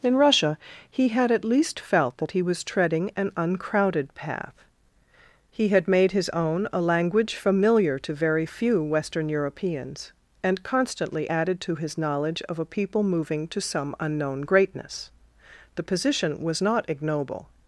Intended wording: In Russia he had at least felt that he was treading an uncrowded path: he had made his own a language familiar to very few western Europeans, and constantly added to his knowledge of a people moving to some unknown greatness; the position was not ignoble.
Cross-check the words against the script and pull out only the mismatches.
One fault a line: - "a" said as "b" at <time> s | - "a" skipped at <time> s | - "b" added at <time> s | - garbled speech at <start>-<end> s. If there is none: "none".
none